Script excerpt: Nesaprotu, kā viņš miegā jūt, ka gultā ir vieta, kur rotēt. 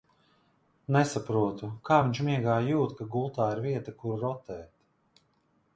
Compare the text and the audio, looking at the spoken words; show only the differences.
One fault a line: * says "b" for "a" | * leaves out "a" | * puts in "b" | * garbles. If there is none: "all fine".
all fine